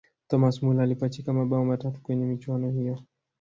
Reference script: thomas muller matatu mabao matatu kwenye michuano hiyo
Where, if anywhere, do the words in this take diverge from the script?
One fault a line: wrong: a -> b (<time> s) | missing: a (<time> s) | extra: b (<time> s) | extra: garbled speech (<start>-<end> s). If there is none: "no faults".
wrong: matatu -> alipachika (0.8 s)